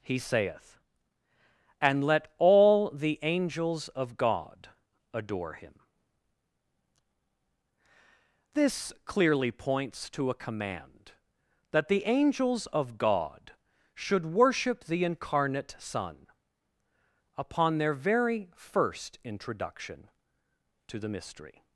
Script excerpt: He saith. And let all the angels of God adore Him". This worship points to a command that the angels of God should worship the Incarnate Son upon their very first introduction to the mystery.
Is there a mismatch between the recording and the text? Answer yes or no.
yes